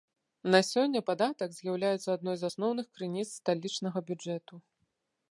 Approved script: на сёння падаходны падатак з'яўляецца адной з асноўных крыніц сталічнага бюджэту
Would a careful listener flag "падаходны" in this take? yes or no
yes